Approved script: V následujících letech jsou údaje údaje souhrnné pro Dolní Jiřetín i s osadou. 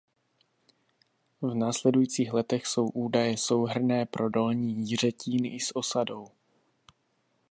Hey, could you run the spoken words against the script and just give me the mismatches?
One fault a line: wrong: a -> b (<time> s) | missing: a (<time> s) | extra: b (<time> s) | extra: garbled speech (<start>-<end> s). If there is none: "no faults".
missing: údaje (3.4 s)